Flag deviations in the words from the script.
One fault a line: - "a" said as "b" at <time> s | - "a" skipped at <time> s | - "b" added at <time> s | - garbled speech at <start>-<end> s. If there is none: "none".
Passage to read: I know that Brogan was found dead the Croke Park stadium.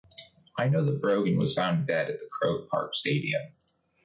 - "at" added at 2.1 s